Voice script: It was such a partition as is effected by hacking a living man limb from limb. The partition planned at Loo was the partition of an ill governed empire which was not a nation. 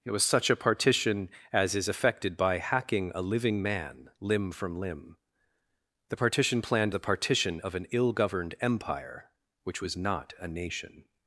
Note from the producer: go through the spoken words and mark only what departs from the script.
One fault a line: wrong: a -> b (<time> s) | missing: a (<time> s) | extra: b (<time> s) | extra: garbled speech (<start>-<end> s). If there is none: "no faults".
missing: at Loo was (7.0 s)